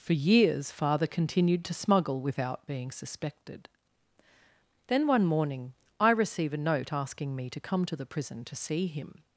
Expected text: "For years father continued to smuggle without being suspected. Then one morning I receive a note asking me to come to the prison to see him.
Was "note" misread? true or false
false